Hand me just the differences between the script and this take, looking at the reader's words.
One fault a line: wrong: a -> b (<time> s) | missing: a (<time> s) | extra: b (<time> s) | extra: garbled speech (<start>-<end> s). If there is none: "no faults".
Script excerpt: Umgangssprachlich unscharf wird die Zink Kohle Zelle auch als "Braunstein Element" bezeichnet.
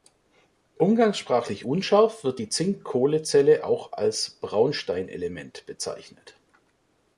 no faults